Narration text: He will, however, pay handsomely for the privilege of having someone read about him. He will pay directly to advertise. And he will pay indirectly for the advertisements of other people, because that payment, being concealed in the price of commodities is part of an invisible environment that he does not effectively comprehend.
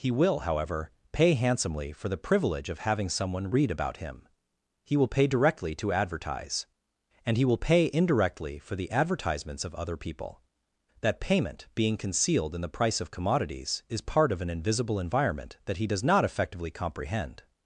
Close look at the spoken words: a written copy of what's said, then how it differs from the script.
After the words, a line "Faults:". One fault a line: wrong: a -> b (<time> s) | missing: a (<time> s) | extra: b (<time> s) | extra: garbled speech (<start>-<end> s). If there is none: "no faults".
He will, however, pay handsomely for the privilege of having someone read about him. He will pay directly to advertise. And he will pay indirectly for the advertisements of other people, that payment, being concealed in the price of commodities is part of an invisible environment that he does not effectively comprehend.
Faults:
missing: because (10.4 s)